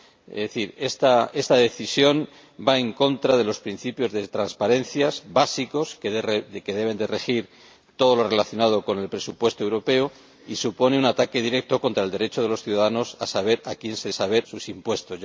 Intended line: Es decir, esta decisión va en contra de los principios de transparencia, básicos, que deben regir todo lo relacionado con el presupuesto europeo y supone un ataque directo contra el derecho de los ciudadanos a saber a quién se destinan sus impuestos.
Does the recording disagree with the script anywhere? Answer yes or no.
yes